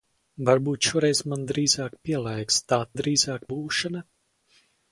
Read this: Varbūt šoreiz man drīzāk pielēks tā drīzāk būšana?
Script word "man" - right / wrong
right